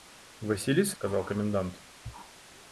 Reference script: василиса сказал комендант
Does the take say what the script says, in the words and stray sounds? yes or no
yes